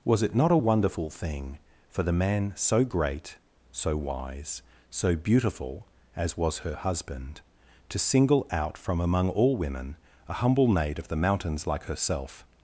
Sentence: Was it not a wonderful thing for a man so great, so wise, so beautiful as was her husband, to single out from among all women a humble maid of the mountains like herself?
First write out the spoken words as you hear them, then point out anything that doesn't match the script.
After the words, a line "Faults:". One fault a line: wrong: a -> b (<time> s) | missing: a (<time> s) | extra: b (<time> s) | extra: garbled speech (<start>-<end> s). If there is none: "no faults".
Was it not a wonderful thing for the man so great, so wise, so beautiful as was her husband, to single out from among all women a humble maid of the mountains like herself?
Faults:
wrong: a -> the (2.0 s)